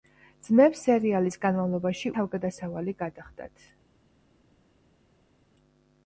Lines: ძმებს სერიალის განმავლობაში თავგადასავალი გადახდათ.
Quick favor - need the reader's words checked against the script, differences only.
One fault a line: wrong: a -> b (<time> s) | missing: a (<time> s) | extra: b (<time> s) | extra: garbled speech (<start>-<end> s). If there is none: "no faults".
no faults